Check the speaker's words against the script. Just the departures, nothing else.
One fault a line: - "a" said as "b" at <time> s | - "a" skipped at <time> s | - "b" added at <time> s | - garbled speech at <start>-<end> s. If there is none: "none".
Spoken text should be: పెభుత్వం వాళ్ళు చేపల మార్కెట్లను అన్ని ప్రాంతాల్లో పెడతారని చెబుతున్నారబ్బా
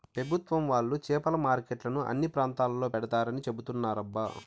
none